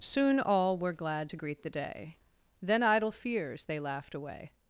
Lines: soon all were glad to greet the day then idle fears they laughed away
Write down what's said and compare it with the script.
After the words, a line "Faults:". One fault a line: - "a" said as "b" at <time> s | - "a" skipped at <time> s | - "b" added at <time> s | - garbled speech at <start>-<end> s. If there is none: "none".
soon all were glad to greet the day then idle fears they laughed away
Faults:
none